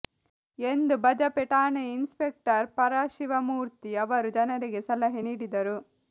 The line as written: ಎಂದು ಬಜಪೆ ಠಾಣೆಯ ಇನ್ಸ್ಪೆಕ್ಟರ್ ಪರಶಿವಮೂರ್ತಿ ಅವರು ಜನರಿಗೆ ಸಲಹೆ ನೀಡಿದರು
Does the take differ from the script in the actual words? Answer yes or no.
no